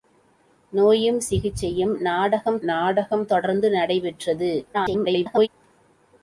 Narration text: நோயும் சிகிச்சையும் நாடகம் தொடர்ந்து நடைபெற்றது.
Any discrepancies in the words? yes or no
yes